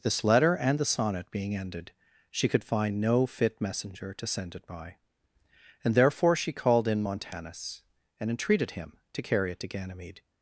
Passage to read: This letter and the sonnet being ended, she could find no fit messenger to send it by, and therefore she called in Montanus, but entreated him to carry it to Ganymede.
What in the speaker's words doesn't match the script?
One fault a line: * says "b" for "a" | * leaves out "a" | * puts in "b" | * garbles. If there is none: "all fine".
* says "and" for "but"